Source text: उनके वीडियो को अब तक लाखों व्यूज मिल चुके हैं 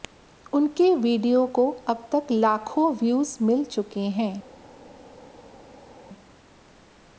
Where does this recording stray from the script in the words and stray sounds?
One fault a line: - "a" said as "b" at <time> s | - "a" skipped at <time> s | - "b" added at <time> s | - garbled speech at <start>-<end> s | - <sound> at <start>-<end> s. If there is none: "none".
none